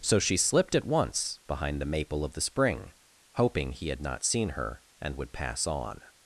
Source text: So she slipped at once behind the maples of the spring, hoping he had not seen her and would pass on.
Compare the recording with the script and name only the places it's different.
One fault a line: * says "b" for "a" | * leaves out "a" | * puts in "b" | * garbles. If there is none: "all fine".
* says "maple" for "maples"